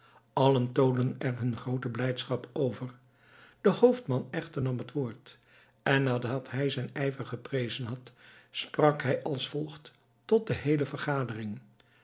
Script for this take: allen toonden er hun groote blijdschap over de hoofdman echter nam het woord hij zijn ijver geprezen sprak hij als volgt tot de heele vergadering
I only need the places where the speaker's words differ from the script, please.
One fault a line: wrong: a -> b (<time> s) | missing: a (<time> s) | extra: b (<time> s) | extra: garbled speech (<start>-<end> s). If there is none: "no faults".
extra: en nadat (5.8 s)
extra: had (7.9 s)